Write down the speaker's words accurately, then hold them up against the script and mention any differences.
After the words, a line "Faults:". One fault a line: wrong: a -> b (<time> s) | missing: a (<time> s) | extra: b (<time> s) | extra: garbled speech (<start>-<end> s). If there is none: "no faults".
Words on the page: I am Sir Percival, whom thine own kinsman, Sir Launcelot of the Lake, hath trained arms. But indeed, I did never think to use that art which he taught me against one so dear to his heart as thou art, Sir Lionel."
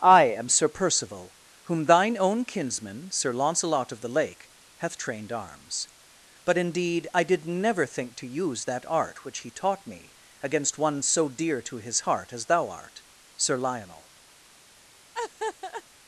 I am Sir Percival, whom thine own kinsman, Sir Launcelot of the Lake, hath trained arms. But indeed, I did never think to use that art which he taught me against one so dear to his heart as thou art, Sir Lionel."
Faults:
no faults